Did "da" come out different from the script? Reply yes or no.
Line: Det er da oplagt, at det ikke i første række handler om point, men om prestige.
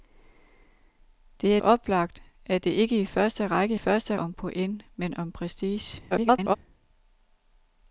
yes